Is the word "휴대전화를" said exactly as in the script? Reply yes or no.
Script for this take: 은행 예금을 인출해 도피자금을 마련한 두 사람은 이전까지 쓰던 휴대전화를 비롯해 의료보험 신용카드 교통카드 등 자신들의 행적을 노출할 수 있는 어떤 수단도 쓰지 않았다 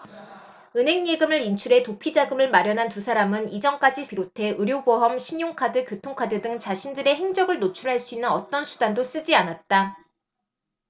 no